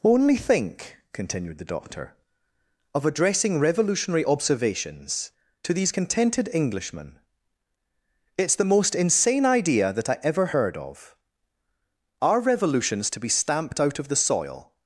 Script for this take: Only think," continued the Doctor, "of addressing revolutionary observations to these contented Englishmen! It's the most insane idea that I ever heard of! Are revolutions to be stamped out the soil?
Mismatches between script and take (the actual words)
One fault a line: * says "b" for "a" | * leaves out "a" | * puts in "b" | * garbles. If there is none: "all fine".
* puts in "of"